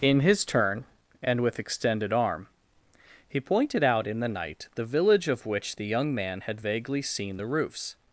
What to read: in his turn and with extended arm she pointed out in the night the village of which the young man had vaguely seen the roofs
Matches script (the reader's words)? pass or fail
fail